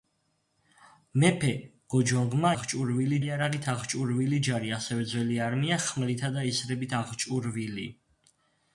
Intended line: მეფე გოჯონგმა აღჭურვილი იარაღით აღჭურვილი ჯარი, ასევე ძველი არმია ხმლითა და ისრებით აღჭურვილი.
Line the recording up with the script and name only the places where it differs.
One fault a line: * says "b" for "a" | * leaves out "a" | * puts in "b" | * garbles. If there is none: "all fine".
all fine